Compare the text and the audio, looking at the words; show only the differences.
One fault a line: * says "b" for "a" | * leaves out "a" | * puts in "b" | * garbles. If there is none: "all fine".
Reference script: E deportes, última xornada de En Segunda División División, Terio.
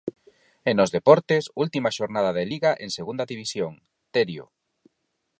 * puts in "nos"
* puts in "Liga"
* leaves out "División"